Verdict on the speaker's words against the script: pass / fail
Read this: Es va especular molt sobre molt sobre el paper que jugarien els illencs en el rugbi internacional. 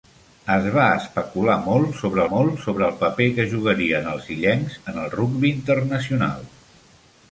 pass